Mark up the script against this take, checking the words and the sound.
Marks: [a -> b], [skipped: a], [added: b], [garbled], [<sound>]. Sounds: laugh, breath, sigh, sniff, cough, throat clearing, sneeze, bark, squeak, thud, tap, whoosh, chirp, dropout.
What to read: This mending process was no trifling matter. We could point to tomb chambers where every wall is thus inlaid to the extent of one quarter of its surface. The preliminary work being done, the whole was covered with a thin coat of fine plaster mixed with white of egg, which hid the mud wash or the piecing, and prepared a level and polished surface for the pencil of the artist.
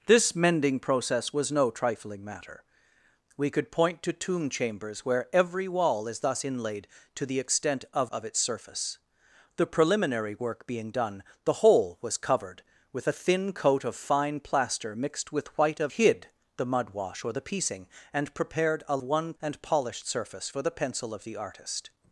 This mending process was no trifling matter. We could point to tomb chambers where every wall is thus inlaid to the extent of [skipped: one quarter] of its surface. The preliminary work being done, the whole was covered with a thin coat of fine plaster mixed with white of [skipped: egg, which] hid the mud wash or the piecing, and prepared a [level -> one] and polished surface for the pencil of the artist.